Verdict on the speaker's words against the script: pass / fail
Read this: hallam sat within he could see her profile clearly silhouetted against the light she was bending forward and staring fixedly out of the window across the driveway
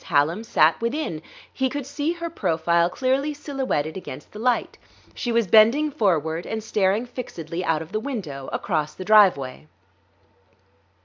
pass